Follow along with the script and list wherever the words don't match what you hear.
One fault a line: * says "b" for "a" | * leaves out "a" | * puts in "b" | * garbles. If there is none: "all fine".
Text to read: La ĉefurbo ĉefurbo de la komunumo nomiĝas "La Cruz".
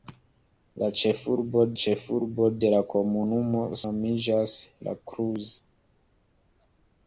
all fine